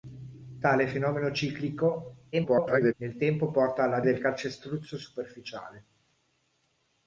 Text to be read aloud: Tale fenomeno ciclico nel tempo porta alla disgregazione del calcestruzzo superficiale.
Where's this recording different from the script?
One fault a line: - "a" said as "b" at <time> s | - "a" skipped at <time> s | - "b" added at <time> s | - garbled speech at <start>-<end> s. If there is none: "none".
- garbled speech at 2.3-2.9 s
- "disgregazione" skipped at 4.0 s